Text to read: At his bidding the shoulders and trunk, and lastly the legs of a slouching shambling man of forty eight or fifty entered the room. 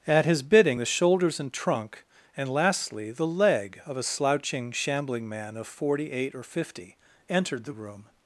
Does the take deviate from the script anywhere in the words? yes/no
yes